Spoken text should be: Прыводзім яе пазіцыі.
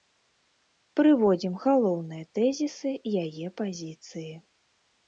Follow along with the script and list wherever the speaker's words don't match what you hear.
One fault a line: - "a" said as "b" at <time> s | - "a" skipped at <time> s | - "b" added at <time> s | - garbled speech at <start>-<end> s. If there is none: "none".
- "галоўныя тэзісы" added at 1.6 s